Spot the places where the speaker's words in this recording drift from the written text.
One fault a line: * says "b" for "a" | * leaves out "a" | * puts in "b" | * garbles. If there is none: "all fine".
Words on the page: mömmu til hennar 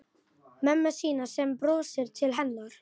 * puts in "sína sem brosir"